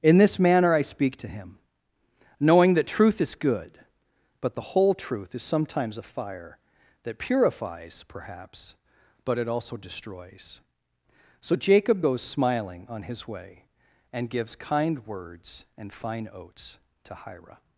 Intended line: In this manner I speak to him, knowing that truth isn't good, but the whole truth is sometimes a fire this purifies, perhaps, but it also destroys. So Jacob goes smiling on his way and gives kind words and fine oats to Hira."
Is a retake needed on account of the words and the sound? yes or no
yes